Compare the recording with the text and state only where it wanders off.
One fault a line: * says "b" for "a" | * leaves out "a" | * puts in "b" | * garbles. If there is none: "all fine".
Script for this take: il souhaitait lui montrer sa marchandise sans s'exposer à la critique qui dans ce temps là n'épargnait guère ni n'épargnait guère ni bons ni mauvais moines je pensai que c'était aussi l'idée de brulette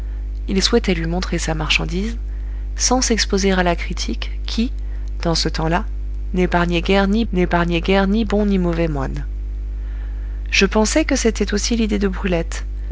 all fine